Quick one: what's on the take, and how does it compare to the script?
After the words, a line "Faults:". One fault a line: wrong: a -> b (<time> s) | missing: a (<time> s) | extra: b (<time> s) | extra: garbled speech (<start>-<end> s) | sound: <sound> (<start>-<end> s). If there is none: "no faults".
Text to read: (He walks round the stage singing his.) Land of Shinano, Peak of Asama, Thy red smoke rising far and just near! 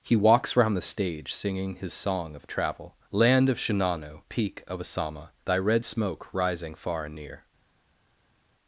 (He walks round the stage singing his song of travel.) Land of Shinano, Peak of Asama, Thy red smoke rising far and near!
Faults:
extra: song of travel (1.9 s)
missing: just (7.2 s)